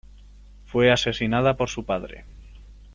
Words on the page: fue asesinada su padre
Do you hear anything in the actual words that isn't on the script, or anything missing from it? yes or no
yes